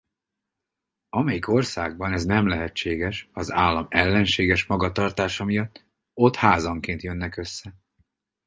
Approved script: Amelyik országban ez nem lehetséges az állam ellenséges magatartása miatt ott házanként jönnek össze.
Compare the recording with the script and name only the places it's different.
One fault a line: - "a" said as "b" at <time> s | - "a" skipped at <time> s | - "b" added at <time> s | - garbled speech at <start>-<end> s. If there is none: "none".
none